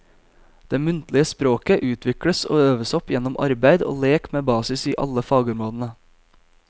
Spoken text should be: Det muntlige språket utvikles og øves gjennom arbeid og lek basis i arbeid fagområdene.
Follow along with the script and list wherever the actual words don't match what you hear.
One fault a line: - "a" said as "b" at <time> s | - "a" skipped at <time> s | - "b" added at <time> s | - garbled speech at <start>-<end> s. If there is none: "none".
- "opp" added at 3.0 s
- "med" added at 4.4 s
- "arbeid" said as "alle" at 5.1 s